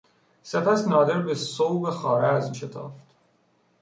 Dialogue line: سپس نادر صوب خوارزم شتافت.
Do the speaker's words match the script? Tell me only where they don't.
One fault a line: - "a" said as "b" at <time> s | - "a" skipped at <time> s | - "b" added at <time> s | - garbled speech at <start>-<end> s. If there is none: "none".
- "به" added at 1.2 s